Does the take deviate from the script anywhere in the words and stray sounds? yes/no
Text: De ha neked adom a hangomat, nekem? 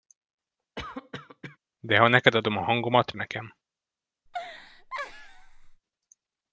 yes